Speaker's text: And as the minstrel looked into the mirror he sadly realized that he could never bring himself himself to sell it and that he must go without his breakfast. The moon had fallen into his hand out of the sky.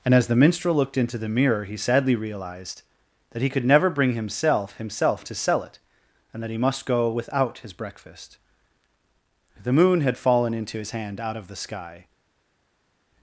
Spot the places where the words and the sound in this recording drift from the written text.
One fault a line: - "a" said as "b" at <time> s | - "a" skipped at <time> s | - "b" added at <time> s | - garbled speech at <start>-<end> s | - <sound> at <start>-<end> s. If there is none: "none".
none